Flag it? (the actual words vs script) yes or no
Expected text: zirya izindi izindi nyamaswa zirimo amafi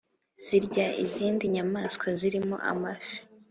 yes